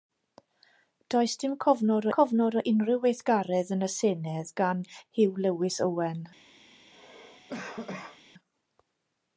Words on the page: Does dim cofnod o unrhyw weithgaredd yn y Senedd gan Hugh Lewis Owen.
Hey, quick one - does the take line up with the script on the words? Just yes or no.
no